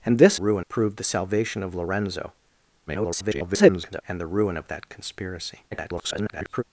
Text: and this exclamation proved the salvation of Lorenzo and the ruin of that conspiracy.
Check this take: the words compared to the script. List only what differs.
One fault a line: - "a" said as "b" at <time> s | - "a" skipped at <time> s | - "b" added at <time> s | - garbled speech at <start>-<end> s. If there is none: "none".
- "exclamation" said as "ruin" at 0.3 s
- garbled speech at 2.9-4.0 s
- garbled speech at 5.7-6.6 s